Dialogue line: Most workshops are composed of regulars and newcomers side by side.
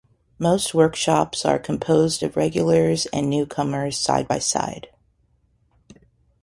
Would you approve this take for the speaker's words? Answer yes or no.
yes